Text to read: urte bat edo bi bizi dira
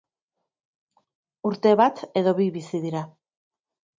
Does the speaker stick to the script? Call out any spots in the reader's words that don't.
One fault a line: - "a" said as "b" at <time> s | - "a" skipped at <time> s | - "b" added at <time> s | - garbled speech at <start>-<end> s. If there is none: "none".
none